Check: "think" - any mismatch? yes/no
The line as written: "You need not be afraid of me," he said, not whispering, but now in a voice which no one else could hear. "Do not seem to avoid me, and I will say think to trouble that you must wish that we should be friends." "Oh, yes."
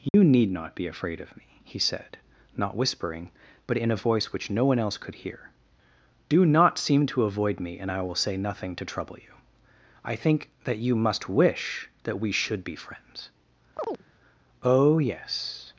yes